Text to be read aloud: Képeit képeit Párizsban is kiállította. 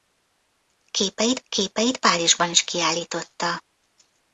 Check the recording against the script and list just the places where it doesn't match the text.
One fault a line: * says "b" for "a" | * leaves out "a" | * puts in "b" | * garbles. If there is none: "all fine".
all fine